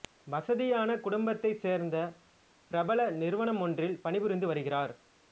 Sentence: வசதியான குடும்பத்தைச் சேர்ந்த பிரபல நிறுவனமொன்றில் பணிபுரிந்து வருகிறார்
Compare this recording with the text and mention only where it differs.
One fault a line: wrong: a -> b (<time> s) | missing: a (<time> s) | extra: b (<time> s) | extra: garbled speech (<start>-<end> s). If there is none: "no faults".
no faults